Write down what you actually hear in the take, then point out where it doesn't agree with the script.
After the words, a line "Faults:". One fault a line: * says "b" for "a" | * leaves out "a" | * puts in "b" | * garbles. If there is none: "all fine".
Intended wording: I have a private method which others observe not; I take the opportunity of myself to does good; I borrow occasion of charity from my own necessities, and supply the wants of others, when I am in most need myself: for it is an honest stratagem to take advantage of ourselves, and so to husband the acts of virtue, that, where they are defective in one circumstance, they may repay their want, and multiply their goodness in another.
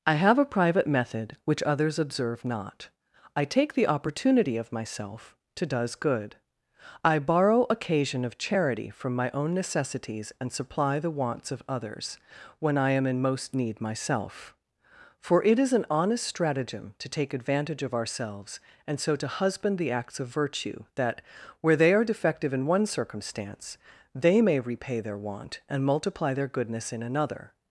I have a private method which others observe not; I take the opportunity of myself to does good; I borrow occasion of charity from my own necessities, and supply the wants of others, when I am in most need myself: for it is an honest stratagem to take advantage of ourselves, and so to husband the acts of virtue, that, where they are defective in one circumstance, they may repay their want, and multiply their goodness in another.
Faults:
all fine